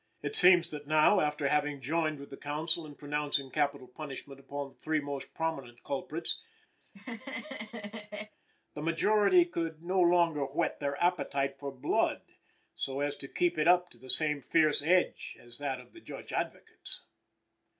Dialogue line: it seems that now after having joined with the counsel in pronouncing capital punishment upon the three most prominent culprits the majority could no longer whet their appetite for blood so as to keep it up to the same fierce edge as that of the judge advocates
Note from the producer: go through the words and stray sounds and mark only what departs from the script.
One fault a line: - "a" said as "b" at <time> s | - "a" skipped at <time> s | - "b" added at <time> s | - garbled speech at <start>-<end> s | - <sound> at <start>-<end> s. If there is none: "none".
- laugh at 6.8-8.4 s